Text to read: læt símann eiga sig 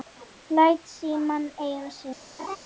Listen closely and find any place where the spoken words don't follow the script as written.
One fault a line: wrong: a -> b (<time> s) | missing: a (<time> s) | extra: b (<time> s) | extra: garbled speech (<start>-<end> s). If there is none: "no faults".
no faults